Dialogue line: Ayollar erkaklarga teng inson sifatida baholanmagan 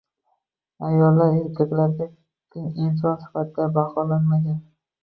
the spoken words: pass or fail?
pass